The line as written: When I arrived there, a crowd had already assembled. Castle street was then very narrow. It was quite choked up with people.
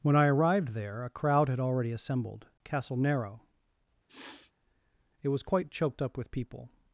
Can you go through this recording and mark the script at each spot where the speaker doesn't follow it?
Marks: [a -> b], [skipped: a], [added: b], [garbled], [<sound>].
When I arrived there, a crowd had already assembled. Castle [skipped: street was then very] narrow. [sniff] It was quite choked up with people.